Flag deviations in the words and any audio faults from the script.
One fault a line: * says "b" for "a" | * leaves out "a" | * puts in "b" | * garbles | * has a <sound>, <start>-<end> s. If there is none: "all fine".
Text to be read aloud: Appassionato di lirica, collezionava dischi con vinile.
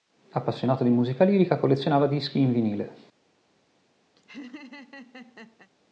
* puts in "musica"
* says "in" for "con"
* has a laugh, 4.2-5.7 s